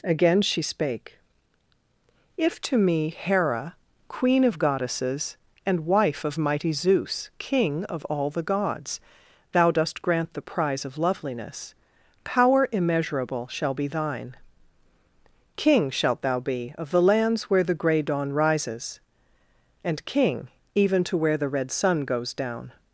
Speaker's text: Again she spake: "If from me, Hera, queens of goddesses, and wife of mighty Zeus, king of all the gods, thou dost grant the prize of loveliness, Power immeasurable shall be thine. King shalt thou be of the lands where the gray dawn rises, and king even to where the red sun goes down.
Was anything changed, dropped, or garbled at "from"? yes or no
yes